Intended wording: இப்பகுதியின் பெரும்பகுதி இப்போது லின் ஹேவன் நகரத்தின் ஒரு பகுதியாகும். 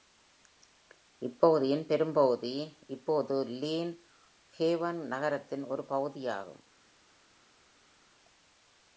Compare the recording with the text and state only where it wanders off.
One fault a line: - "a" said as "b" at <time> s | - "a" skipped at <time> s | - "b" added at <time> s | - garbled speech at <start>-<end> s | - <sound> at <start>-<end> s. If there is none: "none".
none